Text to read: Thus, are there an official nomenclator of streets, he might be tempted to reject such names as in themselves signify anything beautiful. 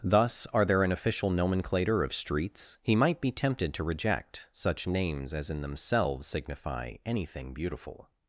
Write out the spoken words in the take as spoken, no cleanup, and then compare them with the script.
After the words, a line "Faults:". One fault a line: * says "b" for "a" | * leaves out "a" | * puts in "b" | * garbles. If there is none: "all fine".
Thus, are there an official nomenclator of streets, he might be tempted to reject such names as in themselves signify anything beautiful.
Faults:
all fine